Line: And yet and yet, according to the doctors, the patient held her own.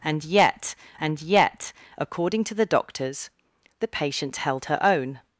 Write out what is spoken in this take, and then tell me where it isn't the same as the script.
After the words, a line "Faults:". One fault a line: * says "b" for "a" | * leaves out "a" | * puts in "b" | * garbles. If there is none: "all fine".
And yet and yet, according to the doctors, the patient held her own.
Faults:
all fine